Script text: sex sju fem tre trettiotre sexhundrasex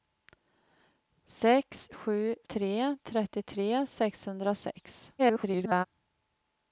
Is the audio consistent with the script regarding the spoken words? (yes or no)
no